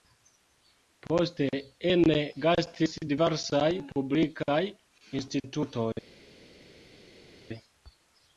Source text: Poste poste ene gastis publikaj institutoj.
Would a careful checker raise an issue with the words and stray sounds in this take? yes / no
yes